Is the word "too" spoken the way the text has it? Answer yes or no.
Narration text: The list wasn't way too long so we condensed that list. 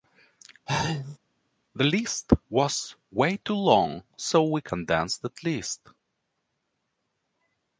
yes